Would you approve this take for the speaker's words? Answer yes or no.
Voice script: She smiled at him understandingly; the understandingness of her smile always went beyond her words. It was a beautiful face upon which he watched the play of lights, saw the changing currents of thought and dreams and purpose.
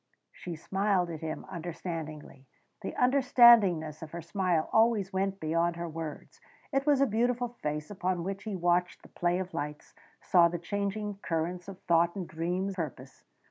no